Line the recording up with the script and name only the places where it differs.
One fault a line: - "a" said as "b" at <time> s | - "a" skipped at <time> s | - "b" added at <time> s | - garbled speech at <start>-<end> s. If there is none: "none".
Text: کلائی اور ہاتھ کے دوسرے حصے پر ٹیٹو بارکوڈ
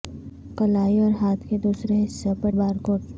- "ٹیٹو" skipped at 2.5 s